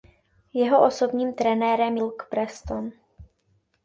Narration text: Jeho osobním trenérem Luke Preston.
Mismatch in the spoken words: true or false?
false